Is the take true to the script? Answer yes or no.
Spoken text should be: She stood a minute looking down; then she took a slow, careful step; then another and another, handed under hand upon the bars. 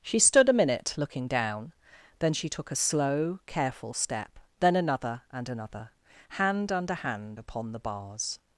no